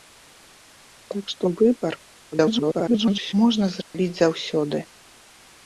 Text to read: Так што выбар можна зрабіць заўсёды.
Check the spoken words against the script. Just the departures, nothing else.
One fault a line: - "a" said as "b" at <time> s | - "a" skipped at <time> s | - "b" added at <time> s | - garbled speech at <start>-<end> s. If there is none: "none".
- garbled speech at 2.3-3.3 s